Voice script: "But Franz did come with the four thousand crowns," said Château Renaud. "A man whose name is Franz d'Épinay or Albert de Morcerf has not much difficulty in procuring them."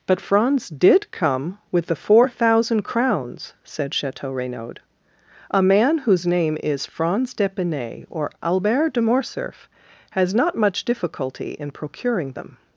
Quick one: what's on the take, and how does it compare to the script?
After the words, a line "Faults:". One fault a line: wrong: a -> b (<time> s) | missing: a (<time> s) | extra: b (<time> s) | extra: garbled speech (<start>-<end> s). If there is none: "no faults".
"But Franz did come with the four thousand crowns," said Château Renaud. "A man whose name is Franz d'Épinay or Albert de Morcerf has not much difficulty in procuring them."
Faults:
no faults